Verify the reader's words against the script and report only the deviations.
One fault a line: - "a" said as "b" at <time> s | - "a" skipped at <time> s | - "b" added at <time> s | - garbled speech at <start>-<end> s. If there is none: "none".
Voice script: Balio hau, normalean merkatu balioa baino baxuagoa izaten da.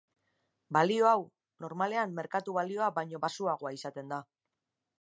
none